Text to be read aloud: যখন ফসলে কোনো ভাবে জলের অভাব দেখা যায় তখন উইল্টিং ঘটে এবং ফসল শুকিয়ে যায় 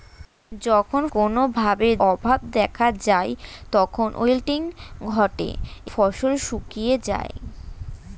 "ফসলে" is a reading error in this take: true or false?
true